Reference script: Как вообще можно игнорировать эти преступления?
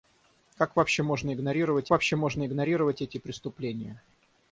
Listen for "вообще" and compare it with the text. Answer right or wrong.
right